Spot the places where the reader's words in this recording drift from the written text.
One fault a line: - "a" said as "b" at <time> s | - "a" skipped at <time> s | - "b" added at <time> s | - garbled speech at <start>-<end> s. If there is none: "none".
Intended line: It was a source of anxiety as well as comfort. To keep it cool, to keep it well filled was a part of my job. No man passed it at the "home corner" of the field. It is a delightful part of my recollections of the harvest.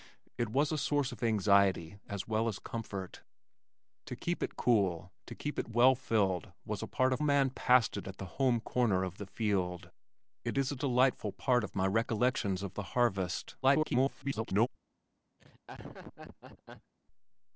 - "my job No" skipped at 7.2 s
- garbled speech at 13.6-14.7 s